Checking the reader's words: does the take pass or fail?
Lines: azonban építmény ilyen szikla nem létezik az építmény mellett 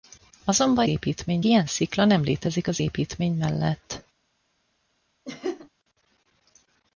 pass